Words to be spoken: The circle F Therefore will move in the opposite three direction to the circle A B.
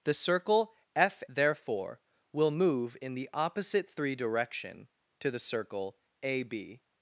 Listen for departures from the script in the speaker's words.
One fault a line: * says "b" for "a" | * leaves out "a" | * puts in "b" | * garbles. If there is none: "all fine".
all fine